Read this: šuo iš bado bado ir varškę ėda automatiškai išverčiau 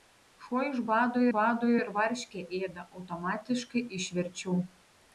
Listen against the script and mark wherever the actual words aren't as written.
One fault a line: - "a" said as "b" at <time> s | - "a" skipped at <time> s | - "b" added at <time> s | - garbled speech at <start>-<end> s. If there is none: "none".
none